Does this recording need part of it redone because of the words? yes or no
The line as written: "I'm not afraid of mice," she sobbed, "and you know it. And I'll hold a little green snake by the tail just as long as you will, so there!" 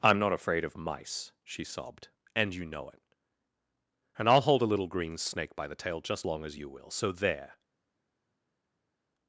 yes